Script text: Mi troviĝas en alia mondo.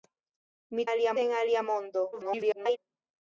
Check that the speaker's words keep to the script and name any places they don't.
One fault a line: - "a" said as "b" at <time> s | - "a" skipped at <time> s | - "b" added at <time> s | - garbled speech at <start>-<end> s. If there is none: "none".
- "troviĝas" said as "alia" at 0.9 s
- garbled speech at 2.1-2.8 s